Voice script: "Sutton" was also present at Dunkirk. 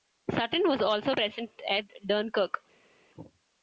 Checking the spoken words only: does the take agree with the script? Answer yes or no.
yes